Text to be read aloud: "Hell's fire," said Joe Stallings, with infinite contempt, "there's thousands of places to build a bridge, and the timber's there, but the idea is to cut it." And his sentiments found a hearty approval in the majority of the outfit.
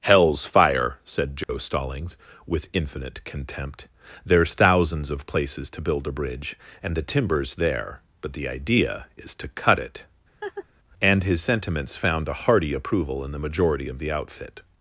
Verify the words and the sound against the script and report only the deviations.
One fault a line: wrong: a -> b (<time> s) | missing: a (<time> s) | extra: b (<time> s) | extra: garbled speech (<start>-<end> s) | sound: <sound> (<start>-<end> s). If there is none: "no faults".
sound: dropout (1.4-1.5 s)
sound: laugh (10.4-10.7 s)